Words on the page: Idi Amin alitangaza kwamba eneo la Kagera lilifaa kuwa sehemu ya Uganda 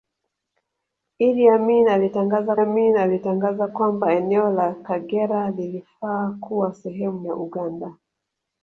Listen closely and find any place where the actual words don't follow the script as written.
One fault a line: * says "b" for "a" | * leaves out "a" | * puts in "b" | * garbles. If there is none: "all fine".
* puts in "Amin alitangaza"